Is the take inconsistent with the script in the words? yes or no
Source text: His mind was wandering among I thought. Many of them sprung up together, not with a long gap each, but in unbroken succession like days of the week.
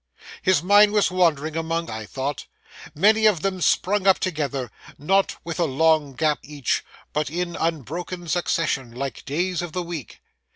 no